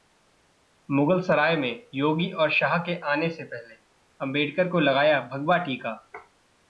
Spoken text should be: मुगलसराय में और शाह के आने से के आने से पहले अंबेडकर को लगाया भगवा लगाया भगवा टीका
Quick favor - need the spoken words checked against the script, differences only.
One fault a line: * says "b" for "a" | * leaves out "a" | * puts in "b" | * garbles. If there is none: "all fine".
* puts in "योगी"
* leaves out "के आने से"
* leaves out "लगाया भगवा"